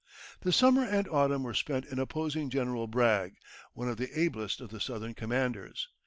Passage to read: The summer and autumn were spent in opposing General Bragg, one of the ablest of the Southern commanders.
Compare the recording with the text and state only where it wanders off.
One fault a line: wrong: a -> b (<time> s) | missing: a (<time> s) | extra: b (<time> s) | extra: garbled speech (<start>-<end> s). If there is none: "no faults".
no faults